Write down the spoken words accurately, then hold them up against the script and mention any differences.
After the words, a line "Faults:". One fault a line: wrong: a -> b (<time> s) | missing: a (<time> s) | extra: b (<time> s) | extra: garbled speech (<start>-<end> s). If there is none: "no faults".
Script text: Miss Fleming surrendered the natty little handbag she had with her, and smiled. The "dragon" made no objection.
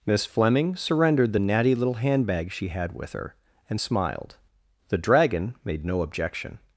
Miss Fleming surrendered the natty little handbag she had with her, and smiled. The "dragon" made no objection.
Faults:
no faults